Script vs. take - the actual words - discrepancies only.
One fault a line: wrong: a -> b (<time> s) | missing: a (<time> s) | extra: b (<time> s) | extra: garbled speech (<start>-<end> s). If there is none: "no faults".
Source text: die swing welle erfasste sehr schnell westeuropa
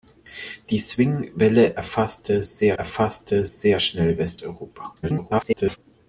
extra: erfasste sehr (2.8 s)
extra: garbled speech (5.0-5.8 s)